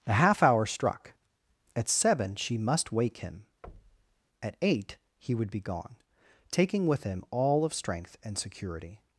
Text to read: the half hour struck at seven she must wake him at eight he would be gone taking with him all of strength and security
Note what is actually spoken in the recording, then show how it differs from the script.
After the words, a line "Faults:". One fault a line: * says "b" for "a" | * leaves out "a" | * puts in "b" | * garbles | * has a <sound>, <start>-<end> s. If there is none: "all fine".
the half hour struck at seven she must wake him at eight he would be gone taking with him all of strength and security
Faults:
* has a thud, 3.6-4.2 s